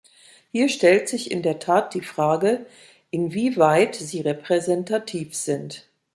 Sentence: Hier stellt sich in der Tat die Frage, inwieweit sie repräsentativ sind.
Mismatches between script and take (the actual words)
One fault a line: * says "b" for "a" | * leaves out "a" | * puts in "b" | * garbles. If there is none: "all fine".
all fine